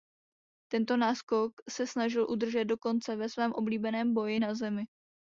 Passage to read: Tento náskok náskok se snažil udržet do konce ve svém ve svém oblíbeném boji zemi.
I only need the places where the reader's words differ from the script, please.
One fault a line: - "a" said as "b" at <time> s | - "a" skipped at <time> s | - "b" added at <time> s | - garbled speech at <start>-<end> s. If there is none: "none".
- "náskok" skipped at 1.5 s
- "ve svém" skipped at 3.5 s
- "na" added at 4.4 s